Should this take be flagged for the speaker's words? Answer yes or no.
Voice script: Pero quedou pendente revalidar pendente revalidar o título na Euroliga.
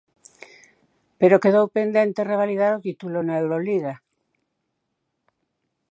yes